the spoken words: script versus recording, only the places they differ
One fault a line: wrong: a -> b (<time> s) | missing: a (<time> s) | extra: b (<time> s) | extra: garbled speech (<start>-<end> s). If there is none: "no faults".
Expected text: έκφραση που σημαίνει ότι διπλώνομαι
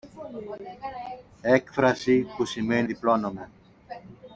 missing: ότι (2.9 s)